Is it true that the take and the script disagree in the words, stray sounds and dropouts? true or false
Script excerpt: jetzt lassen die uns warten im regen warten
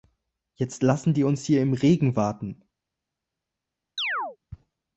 true